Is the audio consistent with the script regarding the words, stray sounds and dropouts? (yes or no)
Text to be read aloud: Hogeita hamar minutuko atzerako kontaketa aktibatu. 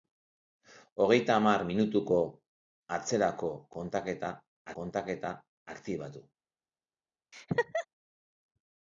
no